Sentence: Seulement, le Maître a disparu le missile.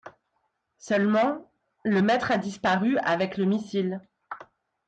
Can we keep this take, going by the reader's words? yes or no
no